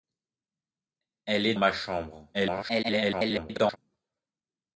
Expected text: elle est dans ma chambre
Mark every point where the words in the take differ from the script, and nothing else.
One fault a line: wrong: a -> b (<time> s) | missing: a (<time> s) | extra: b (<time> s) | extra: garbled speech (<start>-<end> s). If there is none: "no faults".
missing: dans (1.5 s)
extra: garbled speech (2.3-3.8 s)